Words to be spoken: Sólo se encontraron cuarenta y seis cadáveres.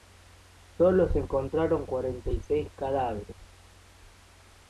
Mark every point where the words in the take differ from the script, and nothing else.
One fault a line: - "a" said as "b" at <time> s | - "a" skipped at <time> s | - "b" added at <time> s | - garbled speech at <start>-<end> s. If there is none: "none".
none